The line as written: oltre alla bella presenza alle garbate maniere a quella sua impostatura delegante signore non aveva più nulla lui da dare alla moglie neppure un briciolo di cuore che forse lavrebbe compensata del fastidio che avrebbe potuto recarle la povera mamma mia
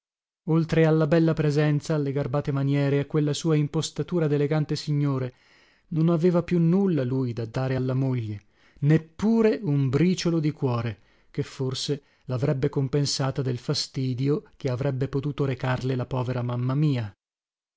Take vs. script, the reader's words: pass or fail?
pass